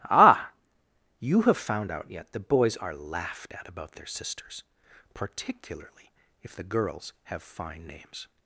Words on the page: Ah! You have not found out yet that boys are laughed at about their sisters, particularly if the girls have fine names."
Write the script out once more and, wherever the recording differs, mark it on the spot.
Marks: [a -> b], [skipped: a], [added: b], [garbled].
Ah! You have [skipped: not] found out yet that boys are laughed at about their sisters, particularly if the girls have fine names."